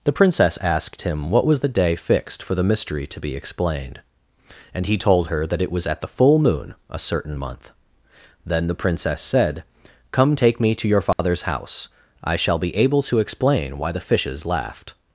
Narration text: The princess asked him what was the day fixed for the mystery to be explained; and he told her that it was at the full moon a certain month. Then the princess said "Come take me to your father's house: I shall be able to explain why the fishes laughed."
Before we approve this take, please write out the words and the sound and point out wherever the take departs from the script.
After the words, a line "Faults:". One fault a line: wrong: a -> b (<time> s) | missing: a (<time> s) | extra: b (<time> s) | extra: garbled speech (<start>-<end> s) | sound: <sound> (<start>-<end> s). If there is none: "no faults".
The princess asked him what was the day fixed for the mystery to be explained; and he told her that it was at the full moon a certain month. Then the princess said "Come take me to your father's house: I shall be able to explain why the fishes laughed."
Faults:
sound: dropout (11.1-11.2 s)